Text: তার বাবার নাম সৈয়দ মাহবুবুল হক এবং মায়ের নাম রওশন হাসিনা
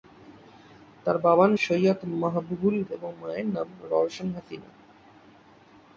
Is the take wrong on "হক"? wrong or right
wrong